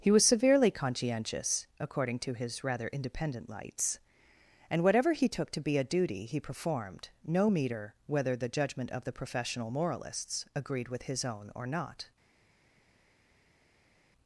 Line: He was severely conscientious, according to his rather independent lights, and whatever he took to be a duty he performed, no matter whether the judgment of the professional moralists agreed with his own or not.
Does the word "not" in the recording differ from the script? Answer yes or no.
no